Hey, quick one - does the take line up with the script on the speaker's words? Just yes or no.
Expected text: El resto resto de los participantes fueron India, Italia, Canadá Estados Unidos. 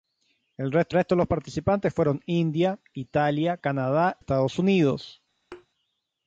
yes